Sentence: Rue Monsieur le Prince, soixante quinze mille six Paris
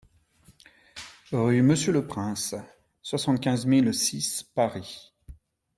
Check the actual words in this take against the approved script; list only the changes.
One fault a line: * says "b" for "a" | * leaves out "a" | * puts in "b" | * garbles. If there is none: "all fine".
all fine